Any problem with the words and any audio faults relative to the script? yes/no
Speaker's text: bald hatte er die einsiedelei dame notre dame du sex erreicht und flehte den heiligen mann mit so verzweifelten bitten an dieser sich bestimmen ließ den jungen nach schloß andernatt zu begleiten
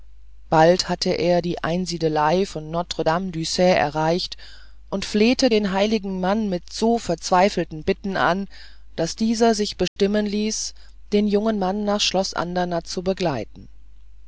yes